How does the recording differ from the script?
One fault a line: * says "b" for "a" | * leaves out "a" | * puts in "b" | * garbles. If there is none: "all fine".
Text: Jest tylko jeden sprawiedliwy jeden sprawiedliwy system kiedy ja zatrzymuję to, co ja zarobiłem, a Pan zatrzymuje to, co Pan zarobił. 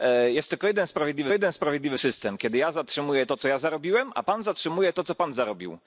all fine